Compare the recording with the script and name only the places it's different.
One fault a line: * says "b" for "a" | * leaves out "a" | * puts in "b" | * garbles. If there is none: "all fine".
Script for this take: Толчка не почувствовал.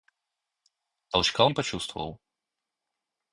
all fine